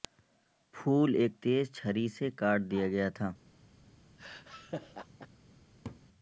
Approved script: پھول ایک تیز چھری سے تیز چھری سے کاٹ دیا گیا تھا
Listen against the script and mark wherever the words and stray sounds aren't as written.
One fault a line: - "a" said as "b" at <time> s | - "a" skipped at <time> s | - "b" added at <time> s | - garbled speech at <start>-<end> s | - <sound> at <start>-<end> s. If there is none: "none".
- "تیز چھری سے" skipped at 2.3 s
- laugh at 4.2-5.3 s
- laugh at 5.8-6.0 s